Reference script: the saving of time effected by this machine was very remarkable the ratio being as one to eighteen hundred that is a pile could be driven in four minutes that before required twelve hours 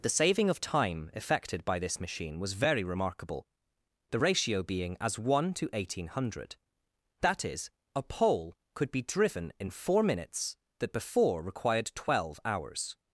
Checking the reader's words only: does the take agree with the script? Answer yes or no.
no